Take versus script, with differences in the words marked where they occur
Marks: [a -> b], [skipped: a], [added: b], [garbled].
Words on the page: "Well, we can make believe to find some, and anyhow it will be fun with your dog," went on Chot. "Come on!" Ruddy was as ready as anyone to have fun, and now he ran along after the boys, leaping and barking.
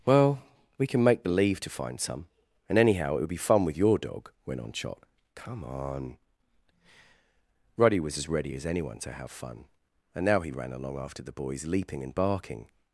"Well, we can make believe to find some, and anyhow it [will -> would] be fun with your dog," went on Chot. "Come on!" Ruddy was as ready as anyone to have fun, and now he ran along after the boys, leaping and barking.